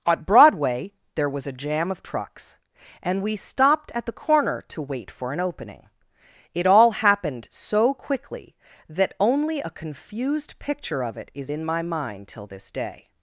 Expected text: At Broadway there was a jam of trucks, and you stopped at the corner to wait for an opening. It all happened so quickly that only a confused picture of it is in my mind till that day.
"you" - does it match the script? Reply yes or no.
no